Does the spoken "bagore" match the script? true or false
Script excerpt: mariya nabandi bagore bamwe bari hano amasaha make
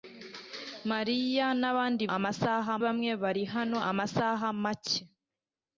false